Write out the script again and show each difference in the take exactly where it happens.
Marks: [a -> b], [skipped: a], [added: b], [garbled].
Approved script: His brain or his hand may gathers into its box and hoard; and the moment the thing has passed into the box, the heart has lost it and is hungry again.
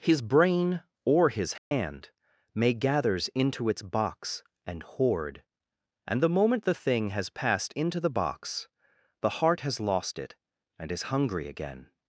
His brain or his hand may gathers into its box and hoard; and the moment the thing has passed into the box, the heart has lost it and is hungry again.